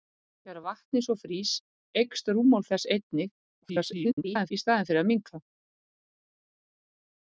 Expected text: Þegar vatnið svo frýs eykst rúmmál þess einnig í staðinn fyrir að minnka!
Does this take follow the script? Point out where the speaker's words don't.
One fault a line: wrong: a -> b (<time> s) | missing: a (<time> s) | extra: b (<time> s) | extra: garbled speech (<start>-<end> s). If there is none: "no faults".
extra: garbled speech (3.6-4.5 s)